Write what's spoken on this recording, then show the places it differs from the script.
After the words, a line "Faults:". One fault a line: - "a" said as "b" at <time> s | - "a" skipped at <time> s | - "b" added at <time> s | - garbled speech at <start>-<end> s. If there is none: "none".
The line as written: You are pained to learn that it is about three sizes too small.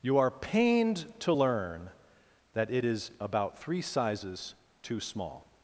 You are pained to learn that it is about three sizes too small.
Faults:
none